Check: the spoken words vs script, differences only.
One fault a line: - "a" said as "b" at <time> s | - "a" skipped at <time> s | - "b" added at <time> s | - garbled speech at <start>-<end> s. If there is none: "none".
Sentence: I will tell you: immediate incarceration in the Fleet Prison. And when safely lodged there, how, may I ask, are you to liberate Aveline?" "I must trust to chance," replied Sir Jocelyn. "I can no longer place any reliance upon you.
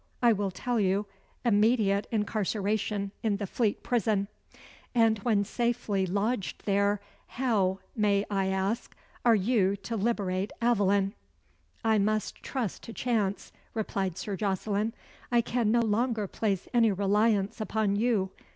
none